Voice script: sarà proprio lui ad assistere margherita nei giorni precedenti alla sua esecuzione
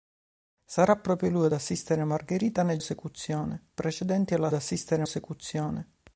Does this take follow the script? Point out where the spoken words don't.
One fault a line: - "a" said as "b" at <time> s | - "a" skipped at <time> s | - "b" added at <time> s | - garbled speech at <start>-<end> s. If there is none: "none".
- "giorni" said as "esecuzione" at 2.8 s
- "sua" said as "assistere" at 4.5 s